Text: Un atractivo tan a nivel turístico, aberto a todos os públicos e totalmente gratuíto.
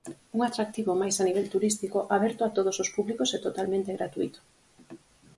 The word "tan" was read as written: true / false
false